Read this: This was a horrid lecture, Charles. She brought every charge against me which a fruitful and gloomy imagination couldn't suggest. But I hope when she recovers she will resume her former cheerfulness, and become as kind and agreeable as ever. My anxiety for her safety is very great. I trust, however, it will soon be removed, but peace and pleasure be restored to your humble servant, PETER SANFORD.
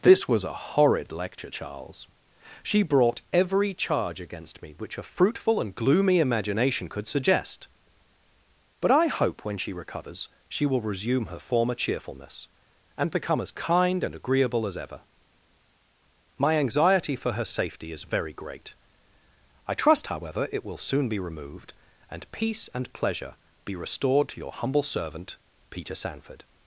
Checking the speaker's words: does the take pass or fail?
fail